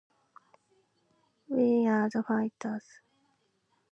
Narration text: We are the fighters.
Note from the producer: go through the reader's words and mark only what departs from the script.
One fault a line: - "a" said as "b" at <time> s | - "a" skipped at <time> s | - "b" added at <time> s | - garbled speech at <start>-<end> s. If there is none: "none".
none